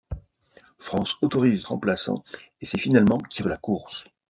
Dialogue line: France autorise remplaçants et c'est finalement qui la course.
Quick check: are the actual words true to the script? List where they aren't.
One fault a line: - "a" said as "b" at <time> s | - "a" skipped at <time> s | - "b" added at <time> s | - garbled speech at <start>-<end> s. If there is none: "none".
none